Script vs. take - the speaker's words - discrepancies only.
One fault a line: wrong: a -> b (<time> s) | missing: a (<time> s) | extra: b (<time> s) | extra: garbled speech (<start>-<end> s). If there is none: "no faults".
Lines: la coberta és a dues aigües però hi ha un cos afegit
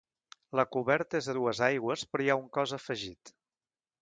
no faults